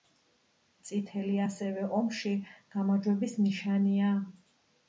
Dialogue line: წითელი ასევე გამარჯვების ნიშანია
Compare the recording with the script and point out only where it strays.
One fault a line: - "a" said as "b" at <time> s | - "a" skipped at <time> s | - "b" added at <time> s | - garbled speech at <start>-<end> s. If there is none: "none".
- "ომში" added at 2.0 s